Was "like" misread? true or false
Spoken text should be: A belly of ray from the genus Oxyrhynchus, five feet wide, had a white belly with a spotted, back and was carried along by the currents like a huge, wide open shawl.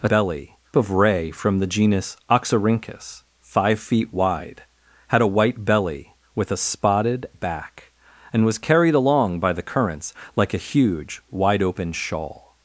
false